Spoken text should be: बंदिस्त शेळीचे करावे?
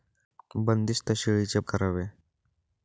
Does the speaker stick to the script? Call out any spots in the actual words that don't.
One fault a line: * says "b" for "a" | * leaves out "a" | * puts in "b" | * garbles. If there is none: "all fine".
all fine